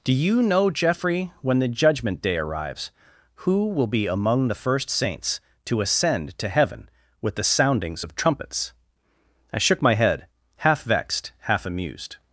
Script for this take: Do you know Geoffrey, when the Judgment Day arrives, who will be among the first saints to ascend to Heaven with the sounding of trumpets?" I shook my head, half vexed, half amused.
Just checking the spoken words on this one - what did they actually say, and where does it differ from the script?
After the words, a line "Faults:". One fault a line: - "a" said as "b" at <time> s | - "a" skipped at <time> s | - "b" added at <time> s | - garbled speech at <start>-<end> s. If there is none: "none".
Do you know Geoffrey, when the Judgment Day arrives, who will be among the first saints to ascend to Heaven with the soundings of trumpets?" I shook my head, half vexed, half amused.
Faults:
- "sounding" said as "soundings" at 7.4 s